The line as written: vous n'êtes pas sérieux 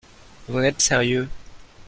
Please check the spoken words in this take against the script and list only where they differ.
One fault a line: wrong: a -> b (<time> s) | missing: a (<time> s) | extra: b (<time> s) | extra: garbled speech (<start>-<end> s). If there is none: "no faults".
missing: pas (0.8 s)